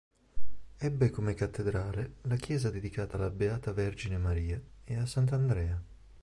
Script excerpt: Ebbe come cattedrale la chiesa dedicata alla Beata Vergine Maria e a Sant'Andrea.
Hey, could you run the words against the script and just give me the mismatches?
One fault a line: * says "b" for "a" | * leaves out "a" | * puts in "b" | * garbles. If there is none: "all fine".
all fine